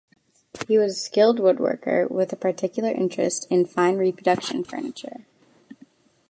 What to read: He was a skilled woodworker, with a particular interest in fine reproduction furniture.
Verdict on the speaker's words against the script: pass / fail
pass